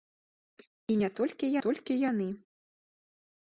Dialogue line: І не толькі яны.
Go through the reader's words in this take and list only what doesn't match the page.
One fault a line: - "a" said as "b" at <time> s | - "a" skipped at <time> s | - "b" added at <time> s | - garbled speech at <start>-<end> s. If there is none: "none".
- "толькі" added at 1.7 s